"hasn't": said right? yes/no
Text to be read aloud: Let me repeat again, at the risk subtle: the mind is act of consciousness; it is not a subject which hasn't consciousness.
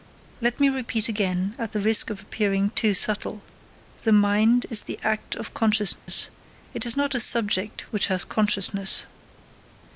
no